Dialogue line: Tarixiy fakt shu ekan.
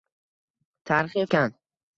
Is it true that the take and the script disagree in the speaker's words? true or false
true